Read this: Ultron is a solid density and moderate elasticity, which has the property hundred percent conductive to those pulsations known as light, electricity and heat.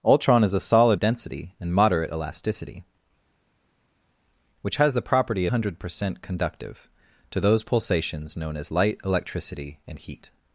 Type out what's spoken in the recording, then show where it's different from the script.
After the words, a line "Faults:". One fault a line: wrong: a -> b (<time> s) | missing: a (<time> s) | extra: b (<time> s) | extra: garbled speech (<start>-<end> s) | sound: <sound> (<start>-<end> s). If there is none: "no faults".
Ultron is a solid density and moderate elasticity, which has the property hundred percent conductive to those pulsations known as light, electricity and heat.
Faults:
no faults